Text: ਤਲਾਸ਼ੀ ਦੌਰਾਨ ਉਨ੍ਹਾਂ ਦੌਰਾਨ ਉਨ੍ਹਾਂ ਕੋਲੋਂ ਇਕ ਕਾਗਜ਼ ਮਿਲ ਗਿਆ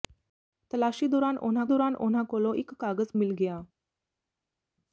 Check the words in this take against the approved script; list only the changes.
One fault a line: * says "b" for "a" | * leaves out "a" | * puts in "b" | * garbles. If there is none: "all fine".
all fine